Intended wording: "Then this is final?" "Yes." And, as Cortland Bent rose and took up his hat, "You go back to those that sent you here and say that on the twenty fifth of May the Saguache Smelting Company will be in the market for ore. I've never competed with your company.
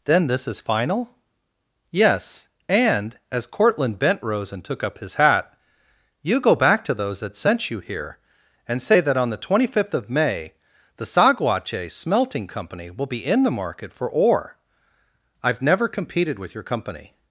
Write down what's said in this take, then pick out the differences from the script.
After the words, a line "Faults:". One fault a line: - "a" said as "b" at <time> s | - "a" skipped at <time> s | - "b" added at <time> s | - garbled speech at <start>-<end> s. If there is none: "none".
"Then this is final?" "Yes." And, as Cortland Bent rose and took up his hat, "You go back to those that sent you here and say that on the twenty fifth of May the Saguache Smelting Company will be in the market for ore. I've never competed with your company.
Faults:
none